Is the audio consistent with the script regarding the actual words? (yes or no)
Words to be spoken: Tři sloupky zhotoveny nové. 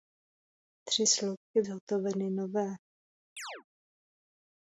yes